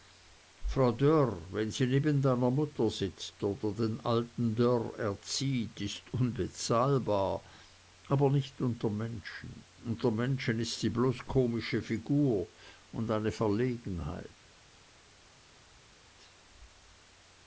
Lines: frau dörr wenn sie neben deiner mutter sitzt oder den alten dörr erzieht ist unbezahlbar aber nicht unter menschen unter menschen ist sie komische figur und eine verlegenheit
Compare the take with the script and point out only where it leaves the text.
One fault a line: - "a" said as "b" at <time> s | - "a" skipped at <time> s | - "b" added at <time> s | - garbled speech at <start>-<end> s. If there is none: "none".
- "bloß" added at 10.9 s